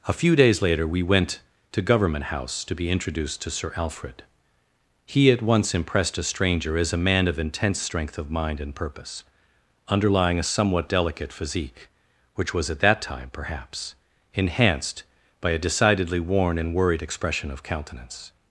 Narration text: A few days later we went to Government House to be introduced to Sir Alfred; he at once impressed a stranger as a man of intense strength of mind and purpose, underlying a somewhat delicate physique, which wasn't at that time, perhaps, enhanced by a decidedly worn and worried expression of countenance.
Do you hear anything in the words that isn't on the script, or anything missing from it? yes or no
yes